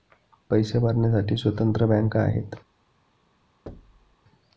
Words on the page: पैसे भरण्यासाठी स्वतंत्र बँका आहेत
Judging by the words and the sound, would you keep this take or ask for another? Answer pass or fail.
fail